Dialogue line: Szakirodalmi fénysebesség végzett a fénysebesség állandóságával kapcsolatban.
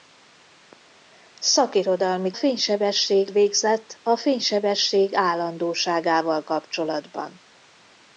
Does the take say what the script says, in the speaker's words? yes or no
yes